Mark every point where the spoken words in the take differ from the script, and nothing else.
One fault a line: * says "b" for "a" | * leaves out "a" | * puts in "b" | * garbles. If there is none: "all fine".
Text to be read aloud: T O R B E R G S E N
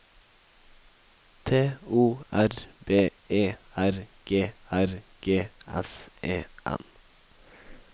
* puts in "R G"